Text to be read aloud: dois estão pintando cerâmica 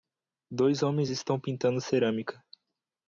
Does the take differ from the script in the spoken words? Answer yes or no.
yes